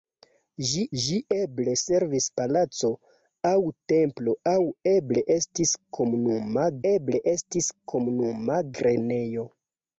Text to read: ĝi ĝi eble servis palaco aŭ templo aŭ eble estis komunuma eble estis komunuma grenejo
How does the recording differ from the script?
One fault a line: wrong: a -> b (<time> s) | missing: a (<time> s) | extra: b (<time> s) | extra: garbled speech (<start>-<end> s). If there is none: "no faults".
no faults